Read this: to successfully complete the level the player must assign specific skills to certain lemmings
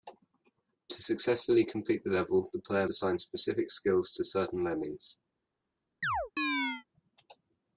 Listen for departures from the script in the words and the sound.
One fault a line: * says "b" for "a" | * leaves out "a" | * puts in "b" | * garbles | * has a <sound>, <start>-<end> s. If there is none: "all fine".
* leaves out "must"
* has a chirp, 6.0-6.8 s